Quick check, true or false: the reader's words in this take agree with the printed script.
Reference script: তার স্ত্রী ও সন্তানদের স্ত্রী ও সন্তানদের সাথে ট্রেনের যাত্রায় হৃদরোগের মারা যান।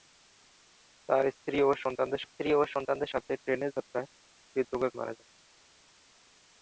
true